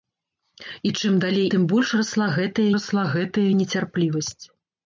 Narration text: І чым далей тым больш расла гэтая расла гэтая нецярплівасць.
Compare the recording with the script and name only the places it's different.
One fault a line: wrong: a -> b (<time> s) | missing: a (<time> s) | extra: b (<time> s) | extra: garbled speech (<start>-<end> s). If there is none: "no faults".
no faults